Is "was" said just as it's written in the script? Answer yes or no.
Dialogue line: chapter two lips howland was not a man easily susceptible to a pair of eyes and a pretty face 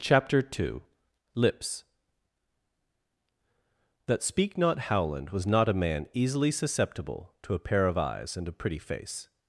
yes